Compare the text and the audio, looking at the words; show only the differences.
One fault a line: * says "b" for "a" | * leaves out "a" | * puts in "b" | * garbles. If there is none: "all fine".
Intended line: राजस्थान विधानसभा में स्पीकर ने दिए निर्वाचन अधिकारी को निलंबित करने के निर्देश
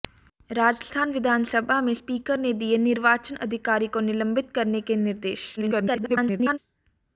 * garbles